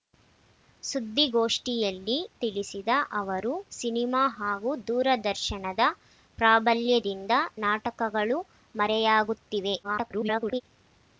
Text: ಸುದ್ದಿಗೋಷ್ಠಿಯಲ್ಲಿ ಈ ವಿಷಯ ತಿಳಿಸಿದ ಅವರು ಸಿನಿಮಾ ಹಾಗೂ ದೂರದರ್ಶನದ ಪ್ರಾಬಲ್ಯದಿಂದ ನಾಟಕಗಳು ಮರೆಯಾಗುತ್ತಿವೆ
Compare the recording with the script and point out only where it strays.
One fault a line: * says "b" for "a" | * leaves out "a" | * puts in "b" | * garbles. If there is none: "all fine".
* leaves out "ಈ ವಿಷಯ"
* garbles